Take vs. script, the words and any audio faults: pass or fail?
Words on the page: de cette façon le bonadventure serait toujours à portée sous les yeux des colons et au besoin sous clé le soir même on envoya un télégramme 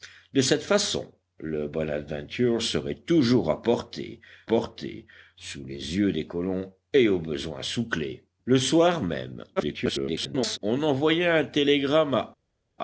fail